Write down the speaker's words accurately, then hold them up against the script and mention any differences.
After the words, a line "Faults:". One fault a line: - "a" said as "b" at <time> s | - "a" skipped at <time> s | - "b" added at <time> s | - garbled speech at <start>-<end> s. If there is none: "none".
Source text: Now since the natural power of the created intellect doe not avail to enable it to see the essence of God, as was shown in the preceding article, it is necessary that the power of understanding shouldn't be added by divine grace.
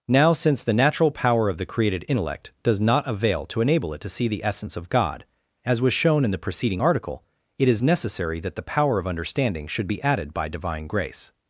Now since the natural power of the created intellect does not avail to enable it to see the essence of God, as was shown in the preceding article, it is necessary that the power of understanding should be added by divine grace.
Faults:
- "doe" said as "does" at 2.6 s
- "shouldn't" said as "should" at 9.7 s